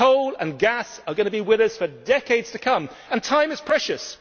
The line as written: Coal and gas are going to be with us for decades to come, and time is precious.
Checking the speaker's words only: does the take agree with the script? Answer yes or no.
yes